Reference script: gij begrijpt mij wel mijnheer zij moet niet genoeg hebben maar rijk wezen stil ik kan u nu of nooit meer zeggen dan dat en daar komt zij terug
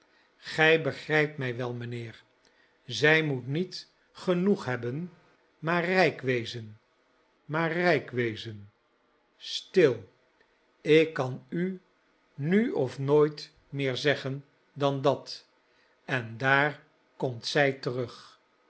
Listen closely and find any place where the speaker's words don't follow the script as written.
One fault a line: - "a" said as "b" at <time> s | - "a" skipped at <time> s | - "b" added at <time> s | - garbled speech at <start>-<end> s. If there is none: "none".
- "maar rijk wezen" added at 7.5 s